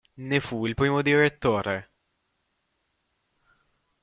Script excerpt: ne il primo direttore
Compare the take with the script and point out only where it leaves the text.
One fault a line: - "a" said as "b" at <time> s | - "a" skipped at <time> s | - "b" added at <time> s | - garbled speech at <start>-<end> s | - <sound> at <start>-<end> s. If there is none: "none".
- "fu" added at 0.4 s